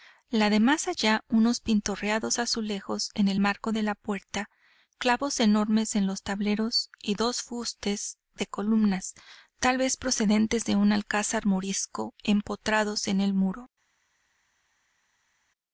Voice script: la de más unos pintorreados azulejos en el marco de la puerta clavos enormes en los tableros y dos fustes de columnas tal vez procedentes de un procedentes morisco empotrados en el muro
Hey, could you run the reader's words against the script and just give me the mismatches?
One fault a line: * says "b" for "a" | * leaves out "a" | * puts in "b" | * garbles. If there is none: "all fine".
* puts in "allá"
* says "alcázar" for "procedentes"